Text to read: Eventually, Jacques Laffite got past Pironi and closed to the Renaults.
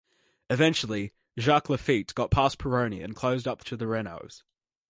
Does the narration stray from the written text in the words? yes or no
yes